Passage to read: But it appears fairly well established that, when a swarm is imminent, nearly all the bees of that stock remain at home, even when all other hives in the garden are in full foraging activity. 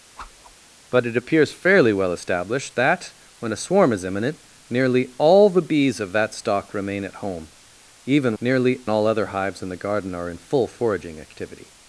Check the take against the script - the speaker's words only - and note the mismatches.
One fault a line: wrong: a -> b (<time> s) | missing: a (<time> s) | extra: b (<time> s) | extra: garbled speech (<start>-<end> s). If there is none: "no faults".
wrong: when -> nearly (8.4 s)